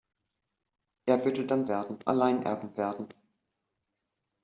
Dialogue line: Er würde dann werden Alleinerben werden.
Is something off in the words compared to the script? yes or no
no